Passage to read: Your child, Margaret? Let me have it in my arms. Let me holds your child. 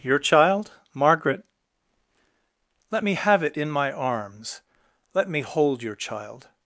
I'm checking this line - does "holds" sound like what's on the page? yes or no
no